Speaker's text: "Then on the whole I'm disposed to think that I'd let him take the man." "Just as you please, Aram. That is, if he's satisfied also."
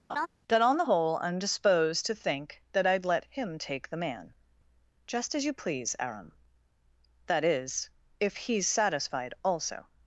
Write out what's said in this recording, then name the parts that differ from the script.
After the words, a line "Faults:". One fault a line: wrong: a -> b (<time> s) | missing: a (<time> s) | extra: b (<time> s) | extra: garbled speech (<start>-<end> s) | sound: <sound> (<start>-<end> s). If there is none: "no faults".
"That on the whole I'm disposed to think that I'd let him take the man." "Just as you please, Aram. That is, if he's satisfied also."
Faults:
sound: laugh (0.1-0.3 s)
wrong: Then -> That (0.5 s)